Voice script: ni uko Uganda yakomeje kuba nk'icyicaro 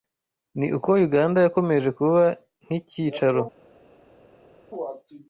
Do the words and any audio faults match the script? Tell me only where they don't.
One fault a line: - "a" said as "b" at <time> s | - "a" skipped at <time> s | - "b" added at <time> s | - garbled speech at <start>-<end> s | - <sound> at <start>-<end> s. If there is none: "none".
none